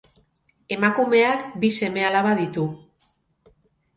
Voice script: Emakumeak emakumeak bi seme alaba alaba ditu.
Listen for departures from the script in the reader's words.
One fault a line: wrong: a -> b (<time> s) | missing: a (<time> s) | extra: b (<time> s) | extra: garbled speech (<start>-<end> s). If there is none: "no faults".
missing: emakumeak (1.4 s)
missing: alaba (2.3 s)